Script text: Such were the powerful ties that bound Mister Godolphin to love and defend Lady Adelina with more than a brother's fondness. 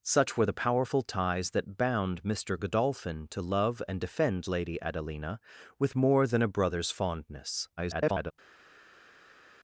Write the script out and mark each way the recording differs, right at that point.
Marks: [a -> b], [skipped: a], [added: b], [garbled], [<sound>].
Such were the powerful ties that bound Mister Godolphin to love and defend Lady Adelina with more than a brother's fondness. [garbled]